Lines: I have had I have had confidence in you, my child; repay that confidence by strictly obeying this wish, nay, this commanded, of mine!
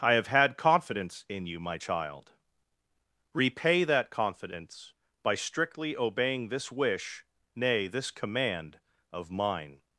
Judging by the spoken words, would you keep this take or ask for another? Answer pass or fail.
fail